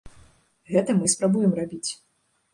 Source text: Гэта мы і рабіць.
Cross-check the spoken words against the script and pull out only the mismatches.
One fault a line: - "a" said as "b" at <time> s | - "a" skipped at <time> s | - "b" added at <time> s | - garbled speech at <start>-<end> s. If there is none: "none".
- "спрабуем" added at 1.1 s